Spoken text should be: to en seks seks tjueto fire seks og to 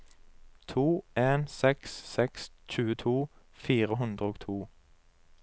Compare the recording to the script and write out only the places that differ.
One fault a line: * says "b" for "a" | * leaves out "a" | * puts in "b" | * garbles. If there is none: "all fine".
* says "hundre" for "seks"